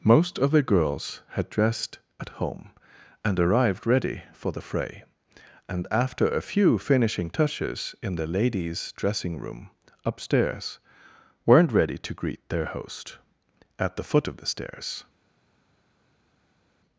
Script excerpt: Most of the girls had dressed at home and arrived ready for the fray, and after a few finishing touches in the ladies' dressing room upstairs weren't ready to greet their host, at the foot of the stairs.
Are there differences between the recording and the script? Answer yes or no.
no